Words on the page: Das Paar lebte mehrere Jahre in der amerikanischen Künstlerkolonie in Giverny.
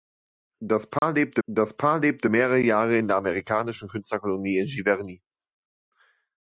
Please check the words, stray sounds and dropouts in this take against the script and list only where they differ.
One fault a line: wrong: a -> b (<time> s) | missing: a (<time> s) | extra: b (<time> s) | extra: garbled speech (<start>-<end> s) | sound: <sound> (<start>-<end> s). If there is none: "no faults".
sound: dropout (1.0-1.0 s)
extra: das Paar lebte (1.5 s)